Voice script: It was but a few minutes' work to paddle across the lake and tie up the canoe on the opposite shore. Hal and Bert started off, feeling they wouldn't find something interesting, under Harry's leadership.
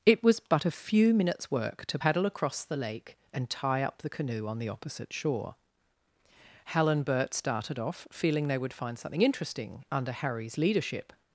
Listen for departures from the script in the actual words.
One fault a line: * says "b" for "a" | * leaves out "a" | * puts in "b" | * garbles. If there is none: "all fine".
* says "would" for "wouldn't"